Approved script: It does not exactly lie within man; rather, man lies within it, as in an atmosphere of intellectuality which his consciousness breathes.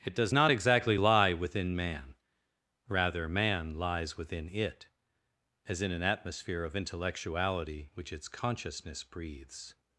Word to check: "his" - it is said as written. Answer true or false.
false